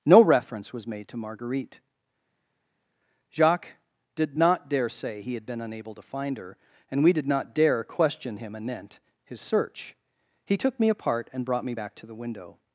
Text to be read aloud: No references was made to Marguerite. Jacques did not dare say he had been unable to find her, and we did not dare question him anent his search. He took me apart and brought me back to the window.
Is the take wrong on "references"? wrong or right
wrong